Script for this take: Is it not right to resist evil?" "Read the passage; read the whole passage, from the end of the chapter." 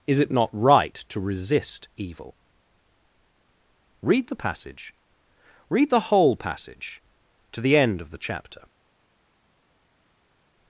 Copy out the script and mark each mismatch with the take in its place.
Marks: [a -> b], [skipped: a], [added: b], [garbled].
Is it not right to resist evil?" "Read the passage; read the whole passage, [from -> to] the end of the chapter."